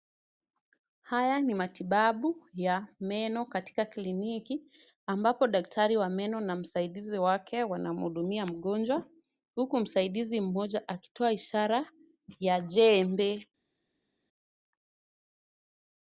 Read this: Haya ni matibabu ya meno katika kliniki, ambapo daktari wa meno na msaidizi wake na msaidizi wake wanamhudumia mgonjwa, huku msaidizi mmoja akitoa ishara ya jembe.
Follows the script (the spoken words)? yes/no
no